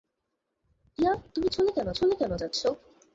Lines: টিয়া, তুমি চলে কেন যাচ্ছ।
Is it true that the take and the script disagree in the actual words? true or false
true